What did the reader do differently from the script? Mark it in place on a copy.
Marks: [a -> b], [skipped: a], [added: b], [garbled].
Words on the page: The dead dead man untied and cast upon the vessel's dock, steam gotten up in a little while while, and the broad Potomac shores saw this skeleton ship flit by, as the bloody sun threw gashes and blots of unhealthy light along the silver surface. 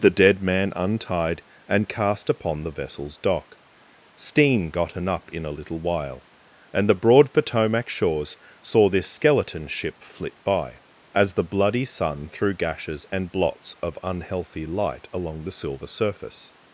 The dead [skipped: dead] man untied and cast upon the vessel's dock, steam gotten up in a little while [skipped: while,] and the broad Potomac shores saw this skeleton ship flit by, as the bloody sun threw gashes and blots of unhealthy light along the silver surface.